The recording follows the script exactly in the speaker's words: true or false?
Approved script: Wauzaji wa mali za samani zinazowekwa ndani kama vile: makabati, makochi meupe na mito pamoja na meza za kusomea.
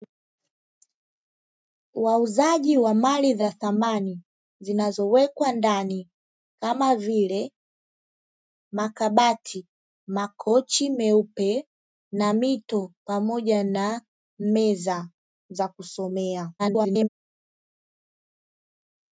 false